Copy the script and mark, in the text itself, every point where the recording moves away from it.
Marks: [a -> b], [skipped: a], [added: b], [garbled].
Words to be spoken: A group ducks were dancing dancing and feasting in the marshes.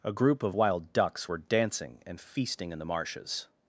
A group [added: of wild] ducks were dancing [skipped: dancing] and feasting in the marshes.